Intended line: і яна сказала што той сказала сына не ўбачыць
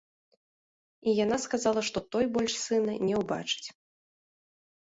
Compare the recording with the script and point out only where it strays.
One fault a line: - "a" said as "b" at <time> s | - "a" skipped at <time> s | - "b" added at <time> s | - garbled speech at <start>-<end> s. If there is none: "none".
- "сказала" said as "больш" at 2.4 s